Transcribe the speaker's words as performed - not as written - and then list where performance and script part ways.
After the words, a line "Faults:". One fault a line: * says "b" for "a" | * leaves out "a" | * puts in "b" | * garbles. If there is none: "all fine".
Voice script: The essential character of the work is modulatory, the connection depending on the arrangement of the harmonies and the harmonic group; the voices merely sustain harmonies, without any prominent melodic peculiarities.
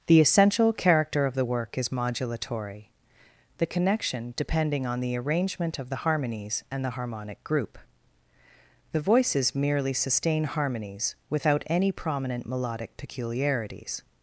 The essential character of the work is modulatory, the connection depending on the arrangement of the harmonies and the harmonic group; the voices merely sustain harmonies, without any prominent melodic peculiarities.
Faults:
all fine